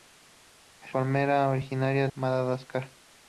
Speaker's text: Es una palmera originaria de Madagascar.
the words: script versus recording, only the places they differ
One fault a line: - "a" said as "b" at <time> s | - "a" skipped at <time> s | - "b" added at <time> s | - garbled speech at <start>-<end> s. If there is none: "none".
- "una" skipped at 1.0 s
- "de" skipped at 2.1 s